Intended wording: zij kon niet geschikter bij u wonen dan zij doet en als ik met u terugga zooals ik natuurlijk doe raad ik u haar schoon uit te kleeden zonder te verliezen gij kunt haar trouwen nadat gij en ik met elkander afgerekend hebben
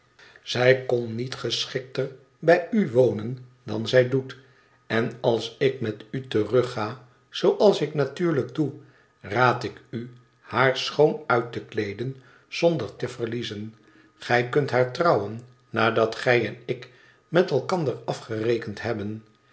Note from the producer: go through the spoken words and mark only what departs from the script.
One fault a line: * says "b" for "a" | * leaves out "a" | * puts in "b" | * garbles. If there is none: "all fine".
all fine